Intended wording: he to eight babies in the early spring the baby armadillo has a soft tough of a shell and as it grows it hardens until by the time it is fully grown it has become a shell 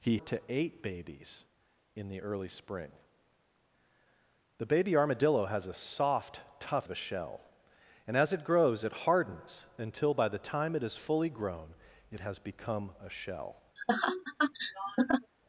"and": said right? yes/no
yes